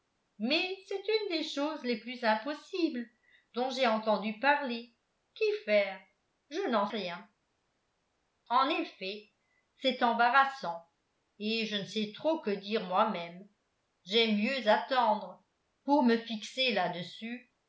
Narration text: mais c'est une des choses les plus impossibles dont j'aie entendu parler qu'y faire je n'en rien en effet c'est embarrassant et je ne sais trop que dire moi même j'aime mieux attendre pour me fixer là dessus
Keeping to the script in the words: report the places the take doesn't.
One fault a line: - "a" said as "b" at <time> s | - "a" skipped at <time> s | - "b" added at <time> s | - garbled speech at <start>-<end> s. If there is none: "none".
none